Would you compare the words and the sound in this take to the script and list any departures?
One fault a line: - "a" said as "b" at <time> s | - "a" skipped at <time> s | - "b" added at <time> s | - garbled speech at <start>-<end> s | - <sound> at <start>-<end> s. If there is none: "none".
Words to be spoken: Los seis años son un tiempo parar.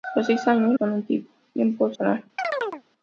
- chirp at 2.4-2.8 s